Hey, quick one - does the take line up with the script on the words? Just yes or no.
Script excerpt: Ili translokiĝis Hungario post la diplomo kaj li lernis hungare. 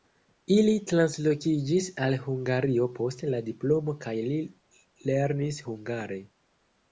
no